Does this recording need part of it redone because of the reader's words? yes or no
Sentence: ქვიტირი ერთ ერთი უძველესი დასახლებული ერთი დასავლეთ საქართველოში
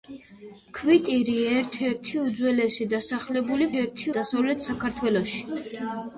no